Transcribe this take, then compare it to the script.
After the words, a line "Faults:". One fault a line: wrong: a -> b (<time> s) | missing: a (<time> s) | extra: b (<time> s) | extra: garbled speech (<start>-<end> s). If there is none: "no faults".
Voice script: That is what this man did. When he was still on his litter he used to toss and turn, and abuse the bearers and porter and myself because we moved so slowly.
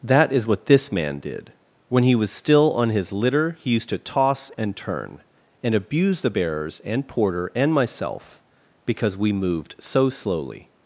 That is what this man did. When he was still on his litter he used to toss and turn, and abuse the bearers and porter and myself because we moved so slowly.
Faults:
no faults